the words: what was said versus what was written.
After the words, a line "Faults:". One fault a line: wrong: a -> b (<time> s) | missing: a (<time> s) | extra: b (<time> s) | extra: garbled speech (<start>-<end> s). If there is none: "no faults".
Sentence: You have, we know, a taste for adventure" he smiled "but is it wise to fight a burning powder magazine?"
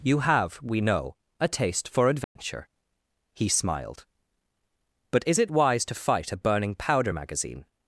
You have, we know, a taste for adventure" he smiled "but is it wise to fight a burning powder magazine?"
Faults:
no faults